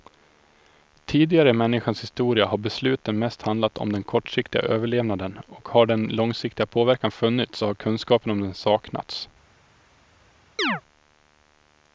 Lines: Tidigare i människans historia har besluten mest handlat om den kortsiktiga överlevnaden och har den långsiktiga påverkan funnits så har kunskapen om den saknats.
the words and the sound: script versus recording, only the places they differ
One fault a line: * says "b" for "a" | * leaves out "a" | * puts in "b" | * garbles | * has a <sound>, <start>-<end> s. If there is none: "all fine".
* has a chirp, 10.6-10.8 s